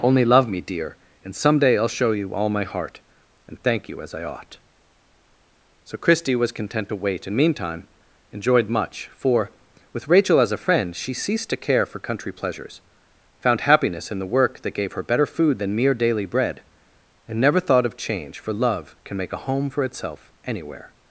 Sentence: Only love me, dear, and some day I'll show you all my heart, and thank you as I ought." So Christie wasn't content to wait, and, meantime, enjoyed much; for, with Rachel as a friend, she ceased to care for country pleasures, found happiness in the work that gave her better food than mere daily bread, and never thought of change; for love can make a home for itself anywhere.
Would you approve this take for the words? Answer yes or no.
no